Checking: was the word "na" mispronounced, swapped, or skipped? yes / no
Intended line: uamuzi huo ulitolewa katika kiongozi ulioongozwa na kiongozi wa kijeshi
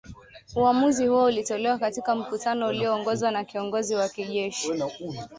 no